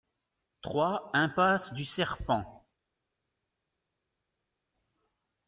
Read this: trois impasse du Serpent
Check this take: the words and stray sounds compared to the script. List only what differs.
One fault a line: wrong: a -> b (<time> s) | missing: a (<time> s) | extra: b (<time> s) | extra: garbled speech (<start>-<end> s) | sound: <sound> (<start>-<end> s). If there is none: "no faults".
no faults